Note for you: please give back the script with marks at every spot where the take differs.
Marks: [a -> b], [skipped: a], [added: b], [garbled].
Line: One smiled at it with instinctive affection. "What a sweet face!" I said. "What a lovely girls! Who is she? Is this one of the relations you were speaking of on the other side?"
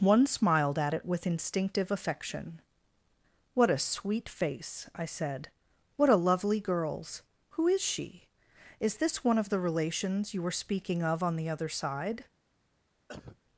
One smiled at it with instinctive affection. "What a sweet face!" I said. "What a lovely girls! Who is she? Is this one of the relations you were speaking of on the other side?"